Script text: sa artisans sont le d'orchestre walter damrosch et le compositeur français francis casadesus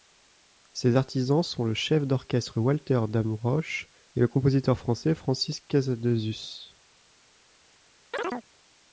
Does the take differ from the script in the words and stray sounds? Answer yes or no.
yes